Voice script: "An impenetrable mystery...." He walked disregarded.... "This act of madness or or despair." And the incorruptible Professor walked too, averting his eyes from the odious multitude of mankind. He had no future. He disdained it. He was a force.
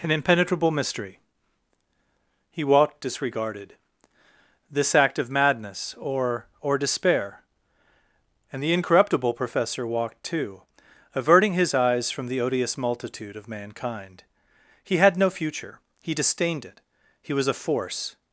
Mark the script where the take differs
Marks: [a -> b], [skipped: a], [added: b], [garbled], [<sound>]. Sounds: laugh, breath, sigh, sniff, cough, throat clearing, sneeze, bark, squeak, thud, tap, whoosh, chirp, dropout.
"An impenetrable mystery...." He walked disregarded.... "This act of madness or or despair." And the incorruptible Professor walked too, averting his eyes from the odious multitude of mankind. He had no future. He disdained it. He was a force.